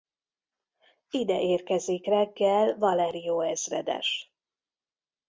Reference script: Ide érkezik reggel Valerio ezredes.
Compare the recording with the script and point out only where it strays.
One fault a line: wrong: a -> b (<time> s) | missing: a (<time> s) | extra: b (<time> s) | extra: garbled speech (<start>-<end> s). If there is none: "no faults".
no faults